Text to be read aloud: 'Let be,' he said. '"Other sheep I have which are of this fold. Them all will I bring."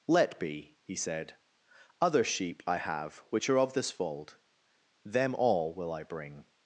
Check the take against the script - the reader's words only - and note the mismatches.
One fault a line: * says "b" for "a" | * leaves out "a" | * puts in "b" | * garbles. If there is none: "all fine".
all fine